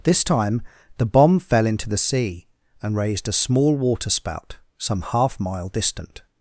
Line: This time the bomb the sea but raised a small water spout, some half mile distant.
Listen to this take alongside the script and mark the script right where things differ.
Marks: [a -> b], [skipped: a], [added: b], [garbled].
This time the bomb [added: fell into] the sea [but -> and] raised a small water spout, some half mile distant.